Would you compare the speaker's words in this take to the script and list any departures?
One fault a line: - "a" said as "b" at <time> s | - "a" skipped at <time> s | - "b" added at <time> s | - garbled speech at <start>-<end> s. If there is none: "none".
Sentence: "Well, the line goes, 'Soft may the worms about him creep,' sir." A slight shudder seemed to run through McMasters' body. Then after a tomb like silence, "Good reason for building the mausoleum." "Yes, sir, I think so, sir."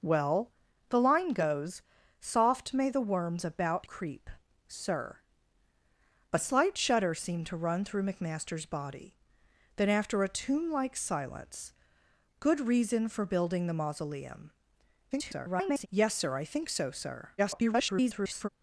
- "him" skipped at 3.9 s
- garbled speech at 15.1-15.9 s
- garbled speech at 17.4-18.5 s